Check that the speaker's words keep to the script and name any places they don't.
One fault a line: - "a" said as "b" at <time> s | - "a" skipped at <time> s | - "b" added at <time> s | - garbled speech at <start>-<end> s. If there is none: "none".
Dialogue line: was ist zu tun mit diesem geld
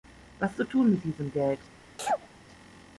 - "ist" skipped at 0.6 s